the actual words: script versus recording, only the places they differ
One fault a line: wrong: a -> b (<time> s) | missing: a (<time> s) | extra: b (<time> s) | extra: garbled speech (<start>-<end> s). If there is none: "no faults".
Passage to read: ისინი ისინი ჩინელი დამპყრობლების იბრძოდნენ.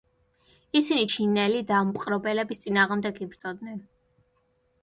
missing: ისინი (1.0 s)
extra: წინააღმდეგ (2.7 s)